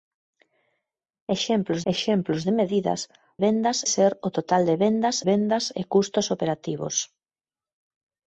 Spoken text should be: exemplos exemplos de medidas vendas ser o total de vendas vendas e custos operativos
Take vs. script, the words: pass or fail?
pass